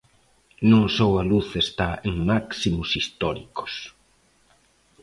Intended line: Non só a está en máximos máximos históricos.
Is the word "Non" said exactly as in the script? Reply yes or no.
yes